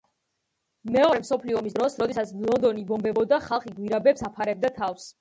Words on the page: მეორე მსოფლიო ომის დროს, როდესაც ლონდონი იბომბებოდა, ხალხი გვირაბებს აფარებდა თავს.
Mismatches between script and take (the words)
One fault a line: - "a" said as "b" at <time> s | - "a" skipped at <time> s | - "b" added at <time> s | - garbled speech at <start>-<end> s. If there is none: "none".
none